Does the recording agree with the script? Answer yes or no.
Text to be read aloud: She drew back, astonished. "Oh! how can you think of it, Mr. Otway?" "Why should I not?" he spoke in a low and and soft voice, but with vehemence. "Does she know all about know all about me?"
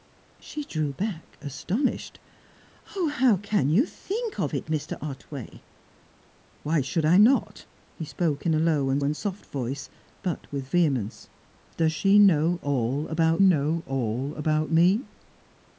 yes